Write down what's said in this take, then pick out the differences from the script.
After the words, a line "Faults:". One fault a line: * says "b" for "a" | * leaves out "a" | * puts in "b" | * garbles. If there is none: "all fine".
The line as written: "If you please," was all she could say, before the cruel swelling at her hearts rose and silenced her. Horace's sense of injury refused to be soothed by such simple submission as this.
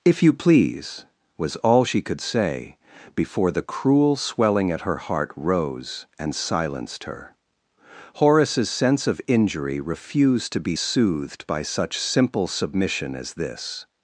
"If you please," was all she could say, before the cruel swelling at her heart rose and silenced her. Horace's sense of injury refused to be soothed by such simple submission as this.
Faults:
* says "heart" for "hearts"